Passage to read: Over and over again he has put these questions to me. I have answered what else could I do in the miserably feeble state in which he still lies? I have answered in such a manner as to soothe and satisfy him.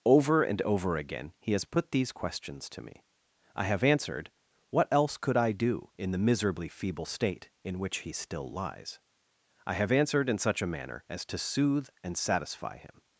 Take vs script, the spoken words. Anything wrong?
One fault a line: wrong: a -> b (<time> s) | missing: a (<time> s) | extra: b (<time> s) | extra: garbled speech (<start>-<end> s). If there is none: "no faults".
no faults